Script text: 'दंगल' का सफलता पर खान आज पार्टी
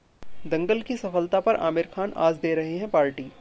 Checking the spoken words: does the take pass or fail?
fail